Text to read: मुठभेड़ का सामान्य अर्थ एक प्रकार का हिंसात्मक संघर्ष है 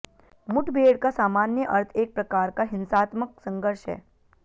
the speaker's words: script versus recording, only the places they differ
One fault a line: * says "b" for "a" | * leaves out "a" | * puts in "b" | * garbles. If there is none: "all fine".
all fine